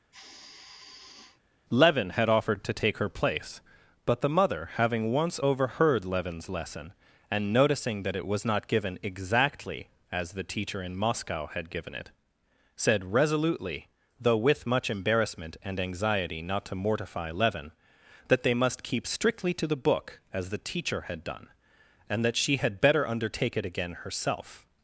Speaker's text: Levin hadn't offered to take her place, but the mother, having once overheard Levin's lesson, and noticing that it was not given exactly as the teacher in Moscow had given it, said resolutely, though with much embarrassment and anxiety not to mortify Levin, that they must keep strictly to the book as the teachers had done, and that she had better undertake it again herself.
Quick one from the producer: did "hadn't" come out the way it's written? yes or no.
no